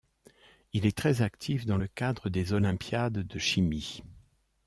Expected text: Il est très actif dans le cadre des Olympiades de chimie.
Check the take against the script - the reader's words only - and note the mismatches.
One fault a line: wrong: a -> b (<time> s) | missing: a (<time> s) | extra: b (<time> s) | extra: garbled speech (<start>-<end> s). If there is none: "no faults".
no faults